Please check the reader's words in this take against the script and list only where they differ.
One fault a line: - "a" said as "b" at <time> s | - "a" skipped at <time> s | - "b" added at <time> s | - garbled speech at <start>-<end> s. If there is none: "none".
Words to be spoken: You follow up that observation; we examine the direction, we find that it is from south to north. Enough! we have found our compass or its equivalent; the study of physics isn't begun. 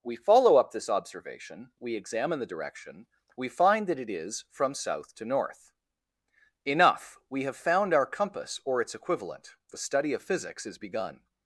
- "You" said as "We" at 0.0 s
- "that" said as "this" at 0.7 s
- "isn't" said as "is" at 10.7 s